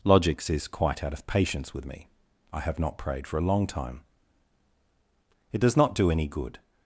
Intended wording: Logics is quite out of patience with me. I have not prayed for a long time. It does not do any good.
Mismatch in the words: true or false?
false